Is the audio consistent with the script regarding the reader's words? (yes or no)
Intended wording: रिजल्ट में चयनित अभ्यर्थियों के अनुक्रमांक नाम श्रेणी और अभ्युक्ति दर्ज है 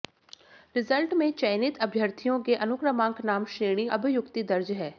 no